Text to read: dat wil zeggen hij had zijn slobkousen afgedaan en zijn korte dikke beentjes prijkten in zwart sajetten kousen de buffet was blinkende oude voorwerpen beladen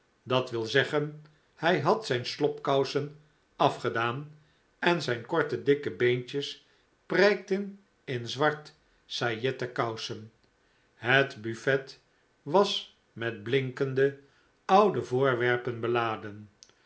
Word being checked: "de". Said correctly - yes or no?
no